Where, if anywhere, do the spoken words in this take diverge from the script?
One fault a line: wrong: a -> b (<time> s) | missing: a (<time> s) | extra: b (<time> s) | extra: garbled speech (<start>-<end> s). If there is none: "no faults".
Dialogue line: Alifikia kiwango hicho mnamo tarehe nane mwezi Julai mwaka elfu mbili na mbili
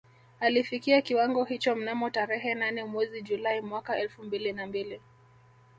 no faults